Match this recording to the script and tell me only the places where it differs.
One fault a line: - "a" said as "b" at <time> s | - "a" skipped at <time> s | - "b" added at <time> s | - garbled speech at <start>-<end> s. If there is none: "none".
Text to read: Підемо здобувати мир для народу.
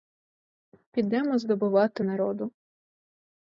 - "мир для" skipped at 2.0 s